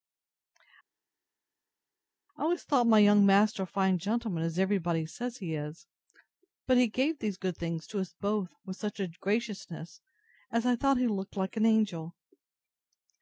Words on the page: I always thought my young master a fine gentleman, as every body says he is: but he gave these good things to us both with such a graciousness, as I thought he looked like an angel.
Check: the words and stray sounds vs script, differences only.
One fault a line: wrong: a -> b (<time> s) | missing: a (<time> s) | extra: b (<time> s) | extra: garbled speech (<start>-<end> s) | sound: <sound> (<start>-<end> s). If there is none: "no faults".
no faults